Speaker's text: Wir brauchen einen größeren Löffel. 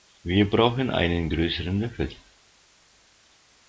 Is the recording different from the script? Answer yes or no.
no